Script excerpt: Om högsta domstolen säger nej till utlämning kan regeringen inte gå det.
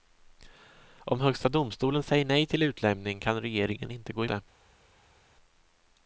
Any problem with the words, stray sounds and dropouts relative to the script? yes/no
no